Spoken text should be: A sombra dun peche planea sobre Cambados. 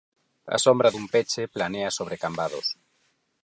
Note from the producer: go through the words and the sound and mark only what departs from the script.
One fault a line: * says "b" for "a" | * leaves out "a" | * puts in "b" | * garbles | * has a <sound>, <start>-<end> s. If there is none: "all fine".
all fine